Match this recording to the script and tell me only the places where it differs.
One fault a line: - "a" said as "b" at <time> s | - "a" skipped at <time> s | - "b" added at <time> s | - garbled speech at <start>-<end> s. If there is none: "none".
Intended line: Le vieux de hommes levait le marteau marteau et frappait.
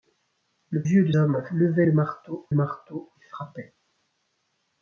none